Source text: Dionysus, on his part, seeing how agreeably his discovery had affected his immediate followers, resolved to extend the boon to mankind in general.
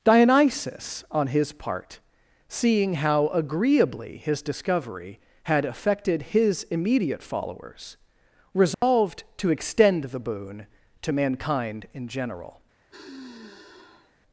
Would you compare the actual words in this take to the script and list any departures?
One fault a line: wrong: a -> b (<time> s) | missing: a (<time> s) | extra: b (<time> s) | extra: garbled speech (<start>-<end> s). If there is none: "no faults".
no faults